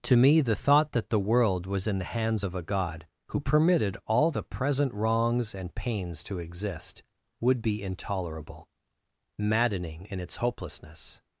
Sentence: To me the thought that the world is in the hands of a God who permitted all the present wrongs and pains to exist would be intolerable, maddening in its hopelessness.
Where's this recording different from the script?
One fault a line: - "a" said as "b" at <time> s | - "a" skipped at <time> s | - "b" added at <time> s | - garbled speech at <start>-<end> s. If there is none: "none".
- "is" said as "was" at 1.7 s